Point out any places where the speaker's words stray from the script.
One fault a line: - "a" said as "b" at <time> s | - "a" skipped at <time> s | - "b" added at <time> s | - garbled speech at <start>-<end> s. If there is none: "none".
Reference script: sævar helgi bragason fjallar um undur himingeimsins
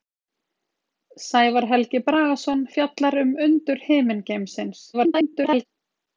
- garbled speech at 4.9-5.7 s